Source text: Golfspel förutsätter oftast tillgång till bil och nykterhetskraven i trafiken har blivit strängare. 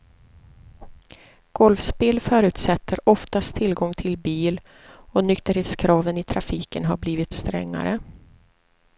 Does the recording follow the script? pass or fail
pass